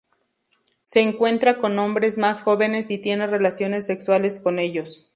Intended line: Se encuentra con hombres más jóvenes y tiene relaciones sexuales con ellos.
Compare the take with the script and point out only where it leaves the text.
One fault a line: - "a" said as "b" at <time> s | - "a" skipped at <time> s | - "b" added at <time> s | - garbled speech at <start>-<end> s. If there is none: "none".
none